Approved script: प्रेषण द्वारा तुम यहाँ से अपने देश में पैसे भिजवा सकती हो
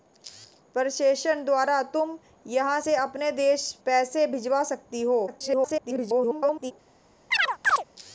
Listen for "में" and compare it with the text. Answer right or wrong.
wrong